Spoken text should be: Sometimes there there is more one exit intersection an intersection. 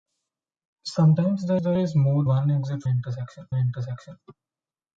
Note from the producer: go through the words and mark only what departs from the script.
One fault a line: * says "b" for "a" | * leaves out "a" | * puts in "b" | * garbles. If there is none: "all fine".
all fine